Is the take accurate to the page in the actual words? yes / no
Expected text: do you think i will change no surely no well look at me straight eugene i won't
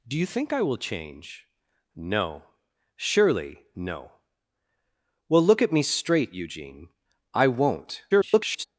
no